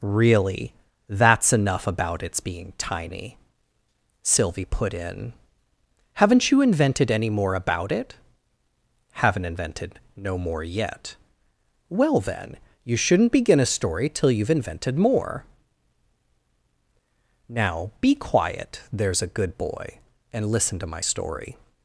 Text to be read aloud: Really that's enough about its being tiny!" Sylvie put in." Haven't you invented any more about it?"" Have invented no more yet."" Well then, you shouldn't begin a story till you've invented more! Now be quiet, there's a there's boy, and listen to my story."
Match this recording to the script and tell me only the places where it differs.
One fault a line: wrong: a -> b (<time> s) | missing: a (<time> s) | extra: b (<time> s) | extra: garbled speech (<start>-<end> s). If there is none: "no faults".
wrong: Have -> Haven't (9.2 s)
wrong: there's -> good (19.3 s)